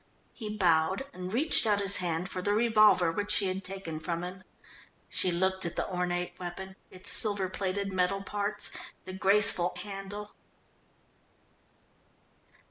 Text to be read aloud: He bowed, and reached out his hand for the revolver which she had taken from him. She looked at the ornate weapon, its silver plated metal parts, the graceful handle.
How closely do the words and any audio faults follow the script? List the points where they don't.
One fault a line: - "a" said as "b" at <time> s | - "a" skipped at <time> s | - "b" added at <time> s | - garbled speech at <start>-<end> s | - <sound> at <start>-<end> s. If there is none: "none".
none